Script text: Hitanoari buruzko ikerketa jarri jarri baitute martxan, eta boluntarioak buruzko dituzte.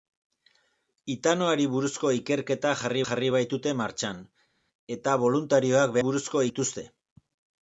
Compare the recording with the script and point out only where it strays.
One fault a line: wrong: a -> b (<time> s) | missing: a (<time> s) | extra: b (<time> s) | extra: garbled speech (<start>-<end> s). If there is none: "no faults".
no faults